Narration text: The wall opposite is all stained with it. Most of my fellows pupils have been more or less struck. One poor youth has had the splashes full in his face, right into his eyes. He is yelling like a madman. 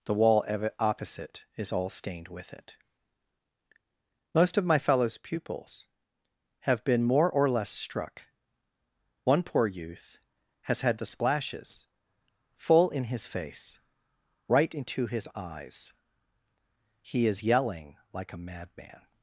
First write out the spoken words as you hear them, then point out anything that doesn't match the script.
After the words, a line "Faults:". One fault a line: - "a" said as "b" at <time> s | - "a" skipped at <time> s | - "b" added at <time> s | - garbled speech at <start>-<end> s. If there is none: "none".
The wall opposite is all stained with it. Most of my fellows pupils have been more or less struck. One poor youth has had the splashes full in his face, right into his eyes. He is yelling like a madman.
Faults:
none